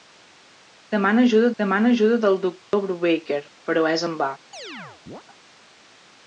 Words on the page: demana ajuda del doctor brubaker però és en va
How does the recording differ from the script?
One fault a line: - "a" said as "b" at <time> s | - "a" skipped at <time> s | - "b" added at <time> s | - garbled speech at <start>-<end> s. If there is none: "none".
- "demana ajuda" added at 1.6 s